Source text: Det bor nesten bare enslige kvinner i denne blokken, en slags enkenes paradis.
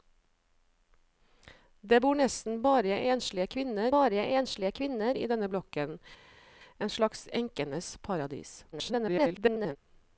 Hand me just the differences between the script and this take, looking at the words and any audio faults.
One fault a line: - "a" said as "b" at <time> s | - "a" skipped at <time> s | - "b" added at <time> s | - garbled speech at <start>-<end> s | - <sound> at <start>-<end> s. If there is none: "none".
- "bare enslige kvinner" added at 3.9 s
- garbled speech at 8.7-9.8 s